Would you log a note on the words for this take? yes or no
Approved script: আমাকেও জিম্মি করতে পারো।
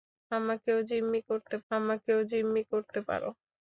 yes